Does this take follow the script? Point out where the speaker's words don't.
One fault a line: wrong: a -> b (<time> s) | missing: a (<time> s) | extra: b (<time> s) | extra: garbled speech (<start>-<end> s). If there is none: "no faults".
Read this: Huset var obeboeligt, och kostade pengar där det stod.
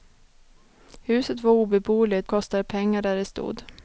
missing: och (2.3 s)